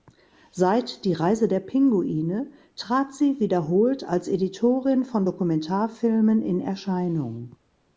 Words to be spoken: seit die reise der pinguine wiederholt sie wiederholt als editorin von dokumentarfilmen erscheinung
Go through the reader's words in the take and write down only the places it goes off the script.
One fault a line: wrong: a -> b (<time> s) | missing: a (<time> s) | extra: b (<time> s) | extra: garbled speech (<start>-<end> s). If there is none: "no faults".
wrong: wiederholt -> trat (2.8 s)
extra: in (6.4 s)